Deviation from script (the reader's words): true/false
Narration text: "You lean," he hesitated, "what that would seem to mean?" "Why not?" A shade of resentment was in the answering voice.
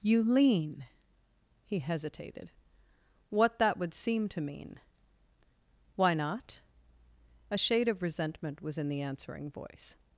false